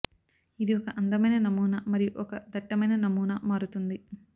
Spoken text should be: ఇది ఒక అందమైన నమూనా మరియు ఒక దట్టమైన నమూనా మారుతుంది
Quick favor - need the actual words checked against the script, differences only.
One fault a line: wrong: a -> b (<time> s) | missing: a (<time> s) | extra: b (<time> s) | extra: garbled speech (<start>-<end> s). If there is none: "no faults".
no faults